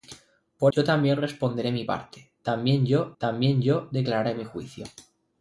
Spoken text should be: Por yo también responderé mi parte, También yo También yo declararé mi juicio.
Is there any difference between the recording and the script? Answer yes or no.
no